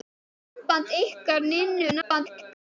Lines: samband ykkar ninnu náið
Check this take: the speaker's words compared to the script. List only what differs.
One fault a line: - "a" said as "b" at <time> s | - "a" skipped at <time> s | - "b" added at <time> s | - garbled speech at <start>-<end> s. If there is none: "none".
- garbled speech at 2.0-2.7 s